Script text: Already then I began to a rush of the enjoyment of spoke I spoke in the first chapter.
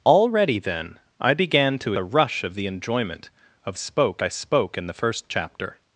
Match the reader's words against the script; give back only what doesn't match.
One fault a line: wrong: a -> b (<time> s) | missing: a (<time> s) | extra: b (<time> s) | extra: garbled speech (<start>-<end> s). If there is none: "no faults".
no faults